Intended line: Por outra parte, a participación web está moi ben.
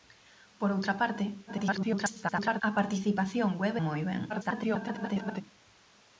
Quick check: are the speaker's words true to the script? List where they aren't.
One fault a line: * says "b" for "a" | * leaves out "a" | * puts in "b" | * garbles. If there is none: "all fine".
* garbles
* leaves out "está"
* garbles